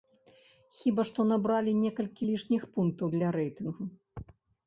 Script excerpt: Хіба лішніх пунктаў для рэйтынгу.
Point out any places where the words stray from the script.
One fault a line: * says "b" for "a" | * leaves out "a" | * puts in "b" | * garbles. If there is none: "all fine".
* puts in "што набралі некалькі"